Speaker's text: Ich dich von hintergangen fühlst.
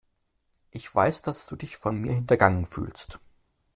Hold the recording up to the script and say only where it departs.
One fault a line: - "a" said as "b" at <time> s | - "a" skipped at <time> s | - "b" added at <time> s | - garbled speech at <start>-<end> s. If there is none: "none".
- "weiß dass du" added at 0.9 s
- "mir" added at 2.0 s